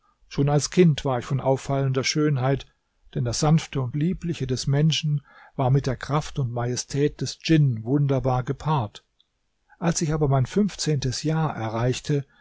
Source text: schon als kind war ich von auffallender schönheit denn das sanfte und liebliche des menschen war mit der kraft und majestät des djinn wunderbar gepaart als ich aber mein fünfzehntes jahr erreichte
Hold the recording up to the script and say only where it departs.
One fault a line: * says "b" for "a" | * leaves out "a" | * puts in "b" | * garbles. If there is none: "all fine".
all fine